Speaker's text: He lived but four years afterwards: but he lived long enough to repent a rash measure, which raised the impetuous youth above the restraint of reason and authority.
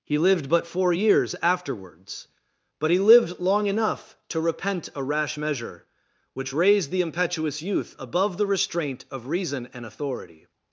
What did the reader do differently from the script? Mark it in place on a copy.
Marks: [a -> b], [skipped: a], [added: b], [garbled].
He lived but four years afterwards: but he lived long enough to repent a rash measure, which raised the impetuous youth above the restraint of reason and authority.